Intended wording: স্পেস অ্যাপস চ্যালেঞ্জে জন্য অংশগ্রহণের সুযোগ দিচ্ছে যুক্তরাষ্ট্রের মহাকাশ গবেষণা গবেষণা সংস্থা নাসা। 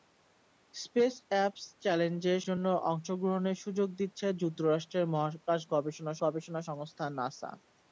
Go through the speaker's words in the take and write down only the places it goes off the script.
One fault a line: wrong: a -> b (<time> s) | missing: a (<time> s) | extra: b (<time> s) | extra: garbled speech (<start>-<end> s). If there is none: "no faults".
no faults